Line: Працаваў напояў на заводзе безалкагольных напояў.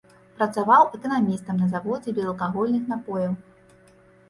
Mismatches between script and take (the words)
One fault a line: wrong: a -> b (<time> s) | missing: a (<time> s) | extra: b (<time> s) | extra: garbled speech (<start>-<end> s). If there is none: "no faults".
wrong: напояў -> эканамістам (1.0 s)